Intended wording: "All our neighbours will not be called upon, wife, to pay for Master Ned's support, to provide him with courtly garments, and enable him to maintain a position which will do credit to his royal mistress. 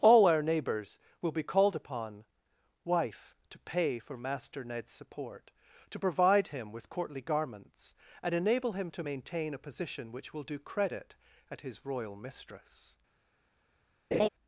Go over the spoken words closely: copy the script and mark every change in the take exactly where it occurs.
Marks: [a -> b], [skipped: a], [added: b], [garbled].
"All our neighbours will [skipped: not] be called upon, wife, to pay for Master Ned's support, to provide him with courtly garments, and enable him to maintain a position which will do credit [to -> at] his royal mistress.